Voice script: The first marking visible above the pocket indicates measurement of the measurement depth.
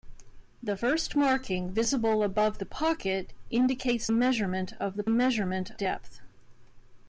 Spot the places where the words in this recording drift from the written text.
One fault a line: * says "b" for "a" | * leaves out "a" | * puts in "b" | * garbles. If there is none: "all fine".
all fine